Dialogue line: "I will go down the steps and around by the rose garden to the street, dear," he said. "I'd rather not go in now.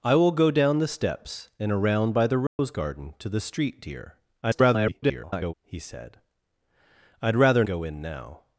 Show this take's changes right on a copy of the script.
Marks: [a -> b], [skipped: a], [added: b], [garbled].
"I will go down the steps and around by the rose garden to the street, dear," [garbled] he said. "I'd rather [skipped: not] go in now.